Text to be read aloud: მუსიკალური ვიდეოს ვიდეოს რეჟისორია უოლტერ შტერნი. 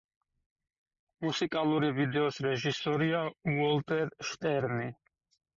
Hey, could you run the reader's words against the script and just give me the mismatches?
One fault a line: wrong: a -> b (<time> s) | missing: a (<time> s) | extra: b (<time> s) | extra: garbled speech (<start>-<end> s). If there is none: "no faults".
missing: ვიდეოს (2.4 s)